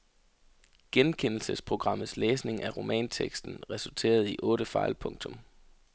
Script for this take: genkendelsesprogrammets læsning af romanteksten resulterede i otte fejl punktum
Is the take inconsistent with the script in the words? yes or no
no